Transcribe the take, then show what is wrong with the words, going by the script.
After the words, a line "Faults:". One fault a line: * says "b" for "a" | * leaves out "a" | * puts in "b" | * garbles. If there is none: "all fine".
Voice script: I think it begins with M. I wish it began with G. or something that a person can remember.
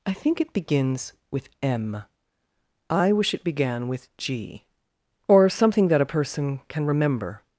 I think it begins with M. I wish it began with G. or something that a person can remember.
Faults:
all fine